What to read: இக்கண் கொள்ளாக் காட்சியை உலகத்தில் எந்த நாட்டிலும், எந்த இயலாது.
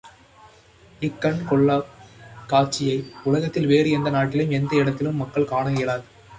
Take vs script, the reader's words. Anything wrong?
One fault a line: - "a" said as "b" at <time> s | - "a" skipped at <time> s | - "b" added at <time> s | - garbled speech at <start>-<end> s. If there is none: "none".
- "வேறு" added at 3.7 s
- "இடத்திலும் மக்கள் காண" added at 4.8 s